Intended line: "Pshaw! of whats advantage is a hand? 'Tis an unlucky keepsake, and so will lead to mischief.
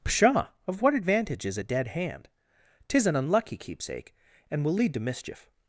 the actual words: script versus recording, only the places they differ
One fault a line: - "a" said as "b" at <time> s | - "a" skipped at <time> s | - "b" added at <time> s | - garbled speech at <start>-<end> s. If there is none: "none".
- "whats" said as "what" at 0.8 s
- "dead" added at 1.6 s
- "so" skipped at 4.6 s